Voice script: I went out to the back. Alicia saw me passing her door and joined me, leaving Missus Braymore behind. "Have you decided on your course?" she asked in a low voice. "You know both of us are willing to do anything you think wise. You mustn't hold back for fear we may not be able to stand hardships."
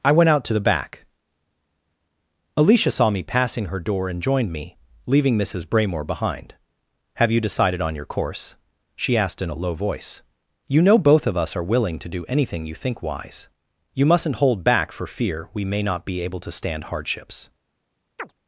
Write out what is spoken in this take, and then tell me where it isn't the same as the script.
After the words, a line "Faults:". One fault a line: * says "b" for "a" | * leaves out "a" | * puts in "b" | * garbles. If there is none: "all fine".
I went out to the back. Alicia saw me passing her door and joined me, leaving Missus Braymore behind. "Have you decided on your course?" she asked in a low voice. "You know both of us are willing to do anything you think wise. You mustn't hold back for fear we may not be able to stand hardships."
Faults:
all fine